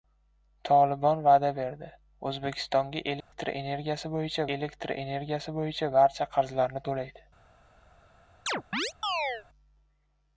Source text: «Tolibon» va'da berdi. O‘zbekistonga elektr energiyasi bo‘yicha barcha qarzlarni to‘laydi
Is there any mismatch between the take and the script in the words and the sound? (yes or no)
yes